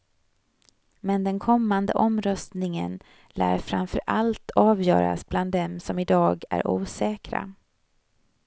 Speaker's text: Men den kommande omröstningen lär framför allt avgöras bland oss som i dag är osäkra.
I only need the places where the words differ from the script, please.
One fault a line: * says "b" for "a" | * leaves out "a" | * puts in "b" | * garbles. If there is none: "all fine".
* says "dem" for "oss"